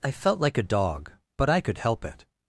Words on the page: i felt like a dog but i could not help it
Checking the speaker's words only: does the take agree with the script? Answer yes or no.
no